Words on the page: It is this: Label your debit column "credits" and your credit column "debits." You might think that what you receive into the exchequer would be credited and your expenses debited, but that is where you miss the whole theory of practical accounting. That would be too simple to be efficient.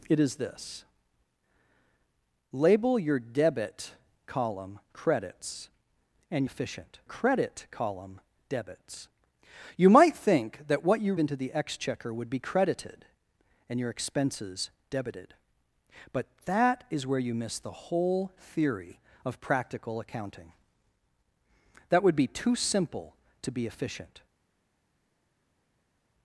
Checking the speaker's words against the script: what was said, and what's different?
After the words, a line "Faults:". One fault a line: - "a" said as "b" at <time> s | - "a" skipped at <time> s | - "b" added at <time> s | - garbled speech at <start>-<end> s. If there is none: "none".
It is this: Label your debit column "credits" and efficient credit column "debits." You might think that what you into the exchequer would be credited and your expenses debited, but that is where you miss the whole theory of practical accounting. That would be too simple to be efficient.
Faults:
- "your" said as "efficient" at 6.4 s
- "receive" skipped at 11.1 s